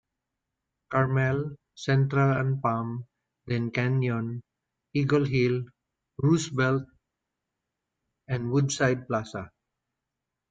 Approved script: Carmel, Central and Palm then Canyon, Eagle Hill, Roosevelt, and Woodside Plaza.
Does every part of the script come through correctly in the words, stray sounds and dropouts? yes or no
yes